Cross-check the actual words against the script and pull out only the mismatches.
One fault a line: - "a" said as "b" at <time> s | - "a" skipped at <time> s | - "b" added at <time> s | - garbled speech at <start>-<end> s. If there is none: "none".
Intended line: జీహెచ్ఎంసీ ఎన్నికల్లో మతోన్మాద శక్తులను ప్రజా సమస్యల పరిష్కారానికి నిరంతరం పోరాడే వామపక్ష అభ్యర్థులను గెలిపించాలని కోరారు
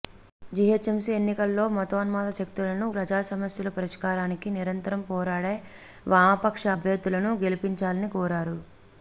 none